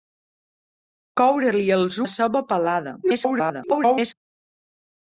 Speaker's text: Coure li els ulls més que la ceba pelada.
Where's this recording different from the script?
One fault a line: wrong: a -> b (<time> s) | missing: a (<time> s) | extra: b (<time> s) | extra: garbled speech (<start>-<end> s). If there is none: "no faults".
missing: ulls més que (2.0 s)
extra: garbled speech (3.0-4.1 s)